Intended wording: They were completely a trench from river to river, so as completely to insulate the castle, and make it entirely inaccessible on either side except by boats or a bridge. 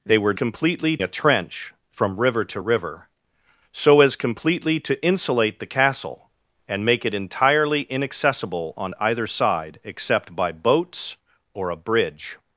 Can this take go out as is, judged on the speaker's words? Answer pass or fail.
pass